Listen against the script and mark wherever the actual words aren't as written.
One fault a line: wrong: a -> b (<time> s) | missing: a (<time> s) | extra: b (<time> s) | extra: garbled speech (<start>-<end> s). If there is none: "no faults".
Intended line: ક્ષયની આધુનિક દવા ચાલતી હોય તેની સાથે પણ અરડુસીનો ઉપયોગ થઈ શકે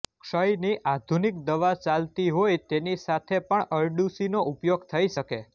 no faults